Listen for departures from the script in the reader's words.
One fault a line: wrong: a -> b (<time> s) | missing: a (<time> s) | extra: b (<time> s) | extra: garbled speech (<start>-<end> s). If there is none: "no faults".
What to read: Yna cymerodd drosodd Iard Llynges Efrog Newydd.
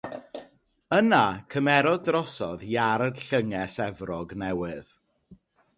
no faults